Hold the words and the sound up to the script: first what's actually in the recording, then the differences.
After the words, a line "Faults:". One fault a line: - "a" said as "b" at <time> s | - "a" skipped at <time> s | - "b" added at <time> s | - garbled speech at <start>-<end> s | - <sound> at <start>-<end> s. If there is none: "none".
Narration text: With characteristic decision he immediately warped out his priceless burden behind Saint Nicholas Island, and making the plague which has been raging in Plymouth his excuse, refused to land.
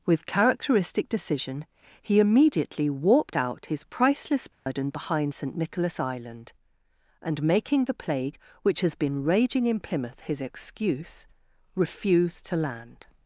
With characteristic decision he immediately warped out his priceless burden behind Saint Nicholas Island, and making the plague which has been raging in Plymouth his excuse, refused to land.
Faults:
- dropout at 4.5-4.7 s